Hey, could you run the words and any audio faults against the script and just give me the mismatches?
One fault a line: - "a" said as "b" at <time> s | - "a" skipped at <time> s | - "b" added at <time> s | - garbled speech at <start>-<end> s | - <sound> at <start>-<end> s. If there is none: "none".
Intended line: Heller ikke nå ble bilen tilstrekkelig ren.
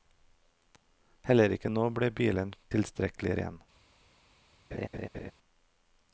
- laugh at 4.7-5.3 s